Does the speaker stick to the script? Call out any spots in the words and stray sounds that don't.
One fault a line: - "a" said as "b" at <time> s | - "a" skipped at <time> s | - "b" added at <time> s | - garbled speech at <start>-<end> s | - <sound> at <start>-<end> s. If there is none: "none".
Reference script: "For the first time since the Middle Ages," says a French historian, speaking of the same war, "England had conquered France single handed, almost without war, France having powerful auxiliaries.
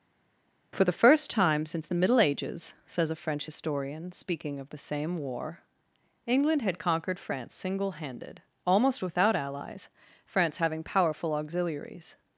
- "war" said as "allies" at 9.3 s